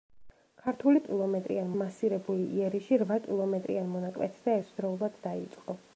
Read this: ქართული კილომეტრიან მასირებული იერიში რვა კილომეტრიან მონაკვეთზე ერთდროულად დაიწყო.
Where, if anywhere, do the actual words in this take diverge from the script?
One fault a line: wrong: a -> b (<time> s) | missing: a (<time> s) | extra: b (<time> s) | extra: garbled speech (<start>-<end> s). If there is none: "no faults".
no faults